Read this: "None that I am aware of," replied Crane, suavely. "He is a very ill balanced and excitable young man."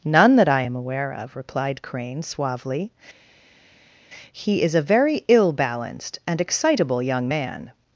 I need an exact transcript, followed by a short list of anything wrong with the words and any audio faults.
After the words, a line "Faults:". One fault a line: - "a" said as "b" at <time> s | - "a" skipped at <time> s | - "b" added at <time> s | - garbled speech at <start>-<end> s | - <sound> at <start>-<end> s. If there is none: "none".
"None that I am aware of," replied Crane, suavely. "He is a very ill balanced and excitable young man."
Faults:
none